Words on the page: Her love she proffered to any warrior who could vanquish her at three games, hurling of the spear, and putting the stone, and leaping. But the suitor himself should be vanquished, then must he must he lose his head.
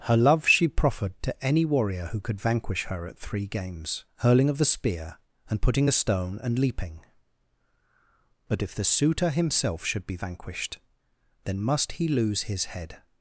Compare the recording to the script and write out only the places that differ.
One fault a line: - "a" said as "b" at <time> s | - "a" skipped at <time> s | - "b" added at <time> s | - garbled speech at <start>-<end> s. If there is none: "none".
- "if" added at 8.6 s
- "must he" skipped at 12.1 s